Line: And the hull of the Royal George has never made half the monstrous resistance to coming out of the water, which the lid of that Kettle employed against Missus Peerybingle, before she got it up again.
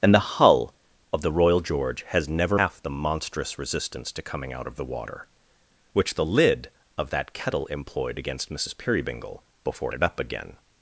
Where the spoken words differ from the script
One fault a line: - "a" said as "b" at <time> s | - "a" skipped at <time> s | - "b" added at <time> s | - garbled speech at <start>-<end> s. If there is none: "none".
- "made" skipped at 2.6 s
- "she got" skipped at 9.9 s